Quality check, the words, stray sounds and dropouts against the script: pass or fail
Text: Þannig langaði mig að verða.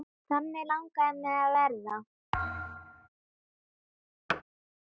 fail